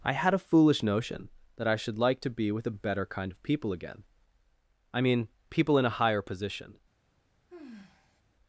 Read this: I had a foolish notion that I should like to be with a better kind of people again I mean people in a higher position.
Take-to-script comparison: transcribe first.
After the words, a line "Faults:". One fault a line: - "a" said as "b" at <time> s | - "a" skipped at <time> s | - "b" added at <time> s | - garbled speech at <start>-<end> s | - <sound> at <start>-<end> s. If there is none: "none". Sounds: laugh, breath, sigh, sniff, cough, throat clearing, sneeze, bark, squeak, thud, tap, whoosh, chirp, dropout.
I had a foolish notion that I should like to be with a better kind of people again I mean people in a higher position.
Faults:
- sigh at 7.5-8.2 s